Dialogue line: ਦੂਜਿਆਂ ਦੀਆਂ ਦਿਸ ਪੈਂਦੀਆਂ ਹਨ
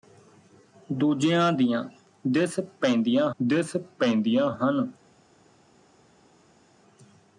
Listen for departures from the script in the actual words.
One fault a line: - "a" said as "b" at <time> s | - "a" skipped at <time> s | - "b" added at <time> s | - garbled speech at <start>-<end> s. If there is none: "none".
- "ਦਿਸ ਪੈਂਦੀਆਂ" added at 3.4 s